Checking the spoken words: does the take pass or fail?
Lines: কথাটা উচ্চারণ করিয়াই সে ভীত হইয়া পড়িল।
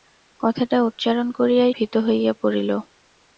fail